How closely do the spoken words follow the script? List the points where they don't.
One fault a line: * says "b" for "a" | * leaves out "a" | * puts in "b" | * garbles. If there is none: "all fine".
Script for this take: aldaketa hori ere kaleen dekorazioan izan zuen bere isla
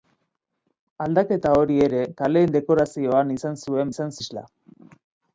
* says "izan" for "bere"